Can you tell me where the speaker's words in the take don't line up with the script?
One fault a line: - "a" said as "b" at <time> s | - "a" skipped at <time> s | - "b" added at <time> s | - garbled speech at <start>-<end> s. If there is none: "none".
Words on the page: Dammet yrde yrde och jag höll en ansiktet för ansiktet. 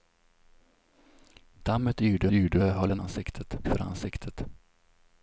none